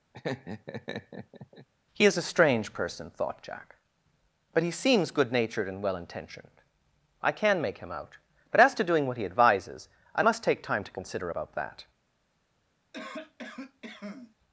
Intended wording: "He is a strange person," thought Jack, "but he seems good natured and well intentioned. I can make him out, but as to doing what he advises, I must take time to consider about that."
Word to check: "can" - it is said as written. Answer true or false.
true